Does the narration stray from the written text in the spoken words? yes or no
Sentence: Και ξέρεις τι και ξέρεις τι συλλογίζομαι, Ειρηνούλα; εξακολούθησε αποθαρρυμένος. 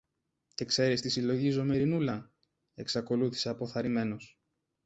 yes